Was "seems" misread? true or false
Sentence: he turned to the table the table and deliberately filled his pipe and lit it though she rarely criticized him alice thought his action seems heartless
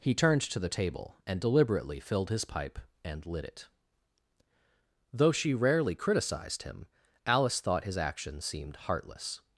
true